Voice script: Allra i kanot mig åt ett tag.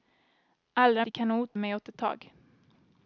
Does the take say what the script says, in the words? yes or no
yes